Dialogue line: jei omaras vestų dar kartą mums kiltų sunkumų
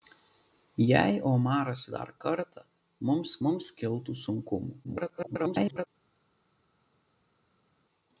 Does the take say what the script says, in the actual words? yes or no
no